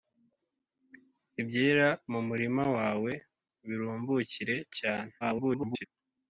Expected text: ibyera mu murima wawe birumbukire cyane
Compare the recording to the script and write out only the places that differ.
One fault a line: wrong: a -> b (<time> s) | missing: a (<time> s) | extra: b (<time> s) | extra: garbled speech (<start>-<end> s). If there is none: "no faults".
extra: garbled speech (5.2-5.9 s)